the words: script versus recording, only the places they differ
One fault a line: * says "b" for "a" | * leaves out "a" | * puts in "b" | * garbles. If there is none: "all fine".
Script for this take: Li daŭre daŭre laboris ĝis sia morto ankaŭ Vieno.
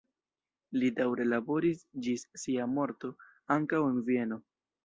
* leaves out "daŭre"
* puts in "en"